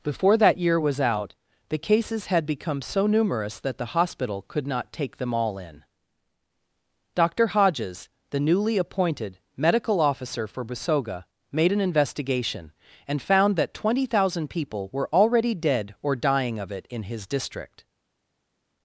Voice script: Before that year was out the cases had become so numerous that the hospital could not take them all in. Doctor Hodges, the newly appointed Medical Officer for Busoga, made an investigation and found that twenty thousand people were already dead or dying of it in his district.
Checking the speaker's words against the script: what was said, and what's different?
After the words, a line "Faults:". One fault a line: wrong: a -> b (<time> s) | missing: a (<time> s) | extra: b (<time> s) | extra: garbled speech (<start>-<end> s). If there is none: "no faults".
Before that year was out the cases had become so numerous that the hospital could not take them all in. Doctor Hodges, the newly appointed Medical Officer for Busoga, made an investigation and found that twenty thousand people were already dead or dying of it in his district.
Faults:
no faults